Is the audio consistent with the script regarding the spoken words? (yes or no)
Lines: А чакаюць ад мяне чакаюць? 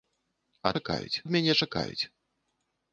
yes